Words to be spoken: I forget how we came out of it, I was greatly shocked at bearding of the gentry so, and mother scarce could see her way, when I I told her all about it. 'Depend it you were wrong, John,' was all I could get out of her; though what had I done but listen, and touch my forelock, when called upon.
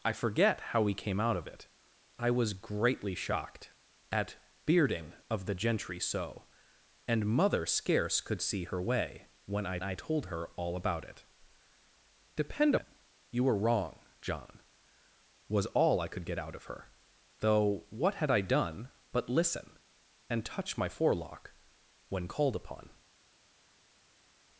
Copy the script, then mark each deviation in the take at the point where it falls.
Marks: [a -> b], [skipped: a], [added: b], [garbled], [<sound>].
I forget how we came out of it, I was greatly shocked at bearding of the gentry so, and mother scarce could see her way, when I I told her all about it. 'Depend it you were wrong, John,' was all I could get out of her; though what had I done but listen, and touch my forelock, when called upon.